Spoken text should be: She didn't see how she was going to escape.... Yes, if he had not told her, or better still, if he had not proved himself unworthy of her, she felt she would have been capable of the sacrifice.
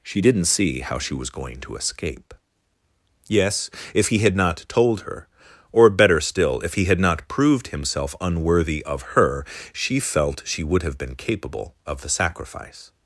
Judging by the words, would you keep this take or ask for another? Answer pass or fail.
pass